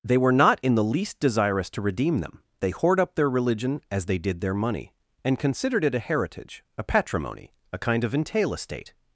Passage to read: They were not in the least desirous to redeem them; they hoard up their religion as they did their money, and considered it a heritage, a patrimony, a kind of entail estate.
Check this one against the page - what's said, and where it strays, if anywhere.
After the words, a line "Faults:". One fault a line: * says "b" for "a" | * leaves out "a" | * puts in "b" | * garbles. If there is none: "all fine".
They were not in the least desirous to redeem them; they hoard up their religion as they did their money, and considered it a heritage, a patrimony, a kind of entail estate.
Faults:
all fine